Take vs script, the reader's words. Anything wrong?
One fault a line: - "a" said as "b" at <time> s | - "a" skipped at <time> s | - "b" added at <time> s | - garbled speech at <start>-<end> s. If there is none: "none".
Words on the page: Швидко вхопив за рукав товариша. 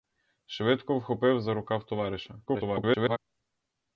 - garbled speech at 2.5-3.2 s